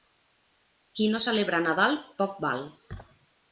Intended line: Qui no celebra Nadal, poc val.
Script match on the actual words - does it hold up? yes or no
yes